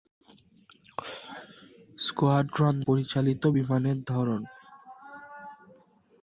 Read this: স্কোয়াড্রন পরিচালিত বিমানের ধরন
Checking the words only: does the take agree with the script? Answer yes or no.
yes